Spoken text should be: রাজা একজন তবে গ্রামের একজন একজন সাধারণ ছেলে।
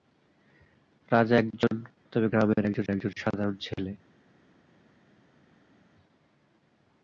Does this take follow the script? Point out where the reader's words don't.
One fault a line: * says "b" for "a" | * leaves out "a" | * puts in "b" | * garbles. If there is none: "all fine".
all fine